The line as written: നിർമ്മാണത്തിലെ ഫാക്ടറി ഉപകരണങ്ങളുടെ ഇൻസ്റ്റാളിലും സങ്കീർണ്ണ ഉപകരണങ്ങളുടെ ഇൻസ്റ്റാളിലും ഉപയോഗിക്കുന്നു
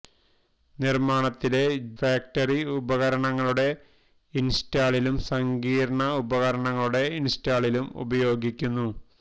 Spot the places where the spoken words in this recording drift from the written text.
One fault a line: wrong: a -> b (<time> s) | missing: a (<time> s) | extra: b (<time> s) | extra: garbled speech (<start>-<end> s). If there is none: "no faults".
no faults